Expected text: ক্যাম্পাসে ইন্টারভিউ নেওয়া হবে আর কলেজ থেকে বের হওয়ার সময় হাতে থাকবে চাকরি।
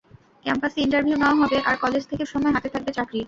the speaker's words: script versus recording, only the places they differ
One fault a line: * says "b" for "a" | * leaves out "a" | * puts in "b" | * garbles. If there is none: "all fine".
* leaves out "বের হওয়ার"